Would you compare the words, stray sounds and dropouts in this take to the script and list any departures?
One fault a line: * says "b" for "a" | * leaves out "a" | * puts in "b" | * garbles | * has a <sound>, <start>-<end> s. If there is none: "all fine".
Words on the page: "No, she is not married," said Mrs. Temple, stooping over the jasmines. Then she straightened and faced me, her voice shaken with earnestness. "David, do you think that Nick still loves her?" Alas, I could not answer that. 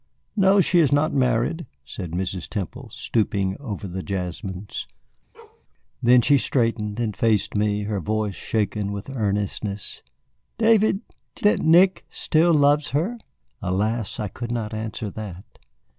* has a bark, 5.3-5.6 s
* leaves out "you think"